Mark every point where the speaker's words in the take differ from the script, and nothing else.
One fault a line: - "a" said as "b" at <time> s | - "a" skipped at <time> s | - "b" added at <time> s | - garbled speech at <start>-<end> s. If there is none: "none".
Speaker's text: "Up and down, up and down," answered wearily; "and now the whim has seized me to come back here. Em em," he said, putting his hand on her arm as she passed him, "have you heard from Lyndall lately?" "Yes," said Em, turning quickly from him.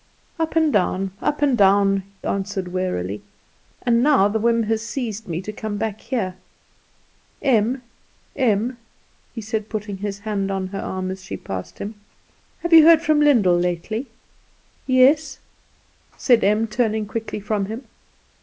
none